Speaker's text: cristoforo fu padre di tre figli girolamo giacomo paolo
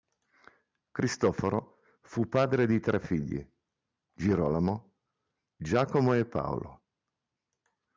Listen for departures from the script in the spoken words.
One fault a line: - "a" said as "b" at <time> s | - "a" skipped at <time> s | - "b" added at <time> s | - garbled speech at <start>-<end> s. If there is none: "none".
- "e" added at 6.1 s